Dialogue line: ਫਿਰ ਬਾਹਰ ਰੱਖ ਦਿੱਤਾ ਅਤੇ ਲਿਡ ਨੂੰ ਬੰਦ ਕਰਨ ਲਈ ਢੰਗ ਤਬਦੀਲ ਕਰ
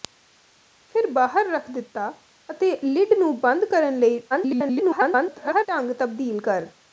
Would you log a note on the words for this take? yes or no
yes